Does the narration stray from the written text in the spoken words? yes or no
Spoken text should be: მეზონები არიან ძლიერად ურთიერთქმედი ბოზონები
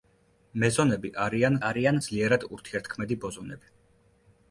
yes